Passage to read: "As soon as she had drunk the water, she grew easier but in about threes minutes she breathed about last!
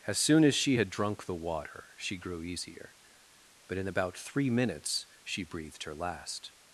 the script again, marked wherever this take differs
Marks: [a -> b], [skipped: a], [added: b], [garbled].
"As soon as she had drunk the water, she grew easier but in about [threes -> three] minutes she breathed [about -> her] last!